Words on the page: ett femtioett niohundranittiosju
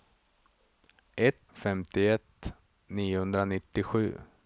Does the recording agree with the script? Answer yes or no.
yes